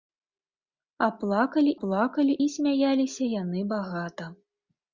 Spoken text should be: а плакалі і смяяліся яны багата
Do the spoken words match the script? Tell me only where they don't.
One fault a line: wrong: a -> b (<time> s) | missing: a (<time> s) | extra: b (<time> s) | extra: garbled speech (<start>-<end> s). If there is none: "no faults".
extra: плакалі (1.8 s)